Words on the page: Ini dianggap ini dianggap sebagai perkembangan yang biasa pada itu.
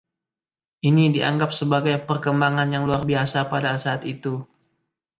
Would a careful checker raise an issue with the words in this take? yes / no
yes